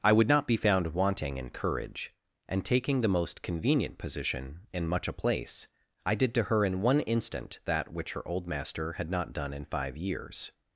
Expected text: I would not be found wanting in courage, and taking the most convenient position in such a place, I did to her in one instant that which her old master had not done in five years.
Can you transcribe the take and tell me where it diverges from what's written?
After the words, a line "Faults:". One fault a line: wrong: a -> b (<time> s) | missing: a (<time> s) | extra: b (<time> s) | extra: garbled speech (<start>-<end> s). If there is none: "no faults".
I would not be found wanting in courage, and taking the most convenient position in much a place, I did to her in one instant that which her old master had not done in five years.
Faults:
wrong: such -> much (4.9 s)